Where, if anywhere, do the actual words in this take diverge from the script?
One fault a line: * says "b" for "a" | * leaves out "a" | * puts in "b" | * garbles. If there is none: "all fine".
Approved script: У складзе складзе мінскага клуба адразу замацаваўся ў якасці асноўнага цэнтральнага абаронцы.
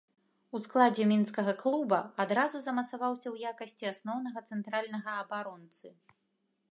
* leaves out "складзе"